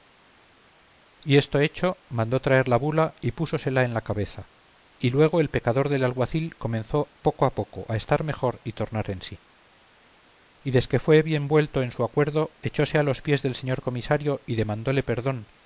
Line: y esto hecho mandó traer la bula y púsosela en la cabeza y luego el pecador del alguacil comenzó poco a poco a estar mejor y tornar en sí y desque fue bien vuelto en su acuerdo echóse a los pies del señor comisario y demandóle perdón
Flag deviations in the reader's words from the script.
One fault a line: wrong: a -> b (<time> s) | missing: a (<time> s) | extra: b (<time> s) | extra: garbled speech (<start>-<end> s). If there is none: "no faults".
no faults